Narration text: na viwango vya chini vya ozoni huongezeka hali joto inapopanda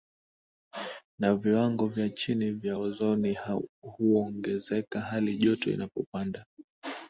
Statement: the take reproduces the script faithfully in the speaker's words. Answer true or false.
true